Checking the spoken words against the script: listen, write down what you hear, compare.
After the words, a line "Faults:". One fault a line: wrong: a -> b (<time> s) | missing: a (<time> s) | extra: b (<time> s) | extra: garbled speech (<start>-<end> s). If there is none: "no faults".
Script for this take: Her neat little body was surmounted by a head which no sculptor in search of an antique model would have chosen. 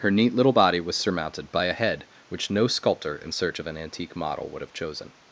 Her neat little body was surmounted by a head which no sculptor in search of an antique model would have chosen.
Faults:
no faults